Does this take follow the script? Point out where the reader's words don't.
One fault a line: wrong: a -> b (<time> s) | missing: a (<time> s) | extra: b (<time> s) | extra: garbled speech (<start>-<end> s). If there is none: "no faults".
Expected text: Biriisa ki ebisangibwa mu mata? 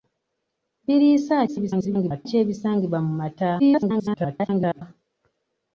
extra: garbled speech (1.5-2.3 s)
extra: garbled speech (3.6-4.8 s)